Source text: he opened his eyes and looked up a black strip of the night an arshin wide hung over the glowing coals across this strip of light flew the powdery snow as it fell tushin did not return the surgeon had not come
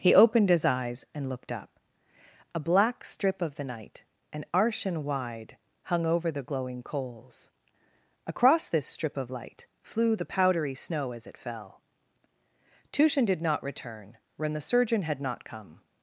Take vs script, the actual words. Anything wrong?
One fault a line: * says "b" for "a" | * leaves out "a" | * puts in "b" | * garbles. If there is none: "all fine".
* puts in "when"